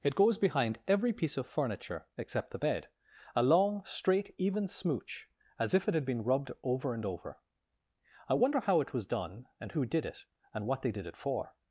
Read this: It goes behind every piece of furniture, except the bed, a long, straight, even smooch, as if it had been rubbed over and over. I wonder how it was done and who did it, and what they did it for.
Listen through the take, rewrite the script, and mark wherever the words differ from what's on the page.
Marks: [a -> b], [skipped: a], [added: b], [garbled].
It goes behind every piece of furniture, except the bed, a long, straight, even smooch, as if it had been rubbed over and over. I wonder how it was done and who did it, and what they did it for.